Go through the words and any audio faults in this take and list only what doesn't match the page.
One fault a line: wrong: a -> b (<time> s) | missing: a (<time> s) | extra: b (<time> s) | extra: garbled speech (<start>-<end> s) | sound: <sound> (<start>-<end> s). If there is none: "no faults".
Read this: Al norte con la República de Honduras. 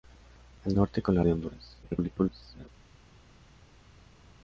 missing: República (1.2 s)
extra: garbled speech (1.8-2.7 s)